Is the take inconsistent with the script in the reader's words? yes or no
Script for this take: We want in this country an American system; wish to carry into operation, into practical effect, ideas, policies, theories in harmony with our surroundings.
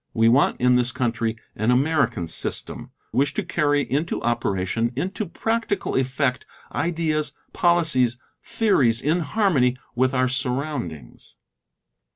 no